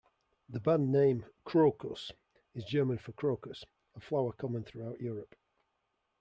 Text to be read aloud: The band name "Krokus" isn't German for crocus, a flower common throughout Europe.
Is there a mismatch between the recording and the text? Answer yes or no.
yes